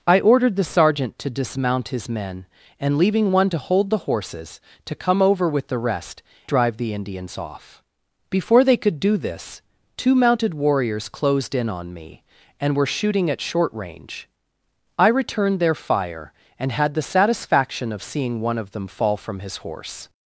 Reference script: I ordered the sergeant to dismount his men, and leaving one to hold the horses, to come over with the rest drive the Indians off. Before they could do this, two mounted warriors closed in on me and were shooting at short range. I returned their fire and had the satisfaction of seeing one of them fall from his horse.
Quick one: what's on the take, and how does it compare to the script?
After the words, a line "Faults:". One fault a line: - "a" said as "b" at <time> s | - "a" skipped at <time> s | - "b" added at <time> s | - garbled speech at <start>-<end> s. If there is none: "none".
I ordered the sergeant to dismount his men, and leaving one to hold the horses, to come over with the rest drive the Indians off. Before they could do this, two mounted warriors closed in on me and were shooting at short range. I returned their fire and had the satisfaction of seeing one of them fall from his horse.
Faults:
none